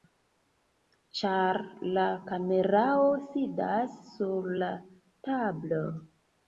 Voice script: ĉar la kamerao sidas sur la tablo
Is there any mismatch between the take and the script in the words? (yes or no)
no